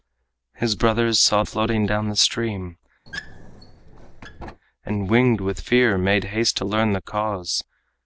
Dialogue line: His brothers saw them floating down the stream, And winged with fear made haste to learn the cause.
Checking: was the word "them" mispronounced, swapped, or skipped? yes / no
yes